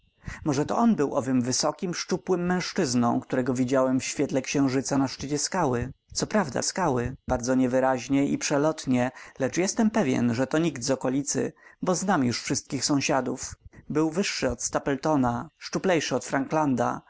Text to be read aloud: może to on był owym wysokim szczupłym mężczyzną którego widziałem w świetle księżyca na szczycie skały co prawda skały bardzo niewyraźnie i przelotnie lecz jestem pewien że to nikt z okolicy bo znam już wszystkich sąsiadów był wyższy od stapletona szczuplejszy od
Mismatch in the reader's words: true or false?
false